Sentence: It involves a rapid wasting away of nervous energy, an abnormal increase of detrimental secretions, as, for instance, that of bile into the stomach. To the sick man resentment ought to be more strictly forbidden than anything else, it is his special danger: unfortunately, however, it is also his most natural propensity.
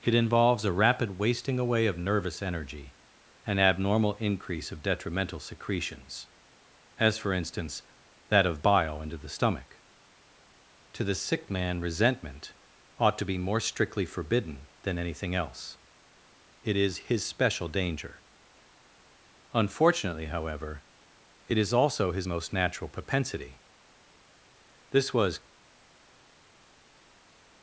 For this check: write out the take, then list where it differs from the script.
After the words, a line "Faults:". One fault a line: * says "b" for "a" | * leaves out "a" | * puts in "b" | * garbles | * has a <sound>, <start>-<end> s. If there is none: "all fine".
It involves a rapid wasting away of nervous energy, an abnormal increase of detrimental secretions, as, for instance, that of bile into the stomach. To the sick man resentment ought to be more strictly forbidden than anything else, it is his special danger: unfortunately, however, it is also his most natural propensity. This was
Faults:
* puts in "This was"